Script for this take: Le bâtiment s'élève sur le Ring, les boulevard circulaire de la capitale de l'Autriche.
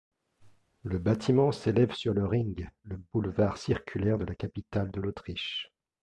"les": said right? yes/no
no